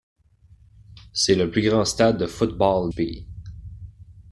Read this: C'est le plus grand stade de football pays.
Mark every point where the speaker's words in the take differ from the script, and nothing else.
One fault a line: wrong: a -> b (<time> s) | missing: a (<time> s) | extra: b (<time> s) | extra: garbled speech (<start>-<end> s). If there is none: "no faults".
no faults